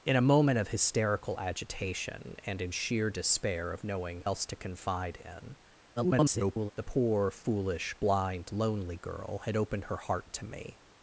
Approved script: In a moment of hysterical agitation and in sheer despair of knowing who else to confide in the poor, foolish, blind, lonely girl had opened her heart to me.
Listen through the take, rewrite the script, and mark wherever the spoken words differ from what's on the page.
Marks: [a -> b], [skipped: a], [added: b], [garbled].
In a moment of hysterical agitation and in sheer despair of knowing [skipped: who] else to confide in [garbled] the poor, foolish, blind, lonely girl had opened her heart to me.